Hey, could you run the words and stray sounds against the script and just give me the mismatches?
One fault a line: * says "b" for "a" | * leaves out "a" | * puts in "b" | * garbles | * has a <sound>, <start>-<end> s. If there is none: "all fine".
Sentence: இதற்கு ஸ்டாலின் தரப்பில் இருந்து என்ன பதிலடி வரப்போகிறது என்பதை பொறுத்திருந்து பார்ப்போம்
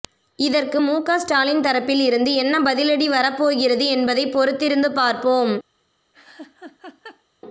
* puts in "முக"
* has a laugh, 6.1-7.2 s